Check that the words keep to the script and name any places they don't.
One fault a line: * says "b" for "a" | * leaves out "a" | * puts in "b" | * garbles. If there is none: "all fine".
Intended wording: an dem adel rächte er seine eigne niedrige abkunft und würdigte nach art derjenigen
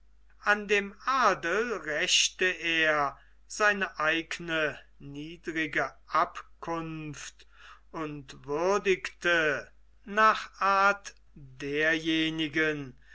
all fine